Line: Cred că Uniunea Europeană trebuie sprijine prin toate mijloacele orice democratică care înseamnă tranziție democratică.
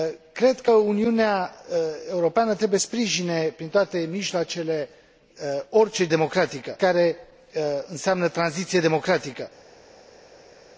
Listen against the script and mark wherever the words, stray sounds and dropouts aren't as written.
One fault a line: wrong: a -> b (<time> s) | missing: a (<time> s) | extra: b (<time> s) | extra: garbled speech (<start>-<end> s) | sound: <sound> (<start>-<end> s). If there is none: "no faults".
no faults